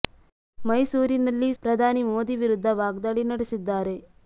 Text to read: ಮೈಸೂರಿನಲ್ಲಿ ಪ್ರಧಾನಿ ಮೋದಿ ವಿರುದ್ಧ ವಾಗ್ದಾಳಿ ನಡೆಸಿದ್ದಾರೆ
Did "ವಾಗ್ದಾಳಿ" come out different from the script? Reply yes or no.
no